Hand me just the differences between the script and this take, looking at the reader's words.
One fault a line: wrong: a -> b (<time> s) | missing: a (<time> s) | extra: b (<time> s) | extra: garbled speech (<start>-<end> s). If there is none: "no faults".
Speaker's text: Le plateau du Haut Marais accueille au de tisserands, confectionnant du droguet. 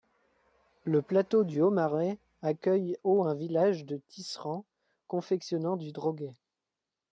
extra: un village (3.2 s)